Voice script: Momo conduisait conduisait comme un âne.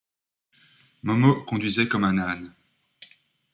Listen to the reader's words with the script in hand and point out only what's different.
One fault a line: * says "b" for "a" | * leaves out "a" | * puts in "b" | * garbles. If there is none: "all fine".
* leaves out "conduisait"